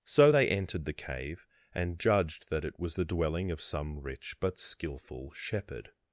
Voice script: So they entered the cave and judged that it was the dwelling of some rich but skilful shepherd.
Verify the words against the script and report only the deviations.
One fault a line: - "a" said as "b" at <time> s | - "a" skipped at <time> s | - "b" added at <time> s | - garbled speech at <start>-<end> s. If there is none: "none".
none